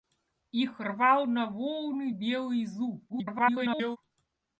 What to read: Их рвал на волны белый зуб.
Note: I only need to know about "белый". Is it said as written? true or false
true